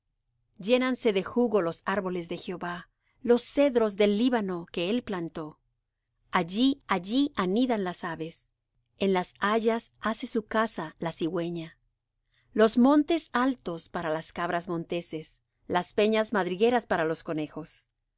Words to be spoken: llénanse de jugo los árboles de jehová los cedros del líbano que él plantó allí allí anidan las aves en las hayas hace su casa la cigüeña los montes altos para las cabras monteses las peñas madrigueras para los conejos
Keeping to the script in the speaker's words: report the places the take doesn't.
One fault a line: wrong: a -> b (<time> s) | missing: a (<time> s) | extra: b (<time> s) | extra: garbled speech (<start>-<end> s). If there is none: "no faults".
no faults